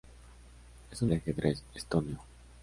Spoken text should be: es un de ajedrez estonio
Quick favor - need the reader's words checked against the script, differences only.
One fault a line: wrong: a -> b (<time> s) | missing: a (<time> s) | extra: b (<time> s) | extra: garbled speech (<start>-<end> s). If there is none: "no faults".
no faults